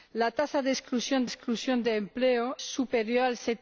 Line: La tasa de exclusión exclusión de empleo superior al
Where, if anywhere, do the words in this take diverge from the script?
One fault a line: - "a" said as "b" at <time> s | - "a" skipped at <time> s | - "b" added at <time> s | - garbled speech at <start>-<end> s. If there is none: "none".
none